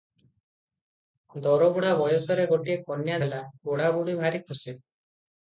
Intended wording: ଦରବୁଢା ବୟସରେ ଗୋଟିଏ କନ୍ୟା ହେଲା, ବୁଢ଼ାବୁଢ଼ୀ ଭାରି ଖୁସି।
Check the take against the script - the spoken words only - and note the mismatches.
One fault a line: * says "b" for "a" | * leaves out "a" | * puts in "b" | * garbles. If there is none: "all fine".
all fine